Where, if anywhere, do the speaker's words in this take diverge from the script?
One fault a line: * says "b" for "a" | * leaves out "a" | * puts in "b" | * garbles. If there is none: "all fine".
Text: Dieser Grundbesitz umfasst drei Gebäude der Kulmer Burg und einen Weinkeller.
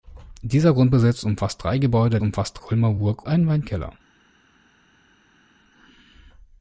* says "umfasst" for "der"
* leaves out "und"